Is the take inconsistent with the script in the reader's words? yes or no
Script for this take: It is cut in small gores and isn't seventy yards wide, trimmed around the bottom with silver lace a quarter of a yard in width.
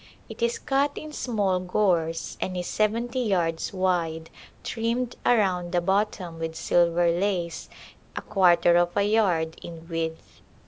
yes